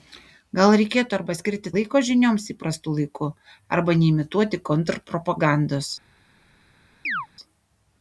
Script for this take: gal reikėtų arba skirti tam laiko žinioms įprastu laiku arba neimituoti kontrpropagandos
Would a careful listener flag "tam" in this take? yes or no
yes